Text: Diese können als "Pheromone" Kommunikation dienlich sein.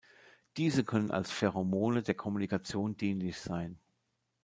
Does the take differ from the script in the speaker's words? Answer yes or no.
yes